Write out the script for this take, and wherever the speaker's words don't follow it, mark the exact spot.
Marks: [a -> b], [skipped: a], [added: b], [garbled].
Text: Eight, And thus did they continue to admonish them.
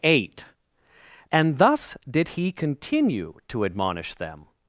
Eight, And thus did [they -> he] continue to admonish them.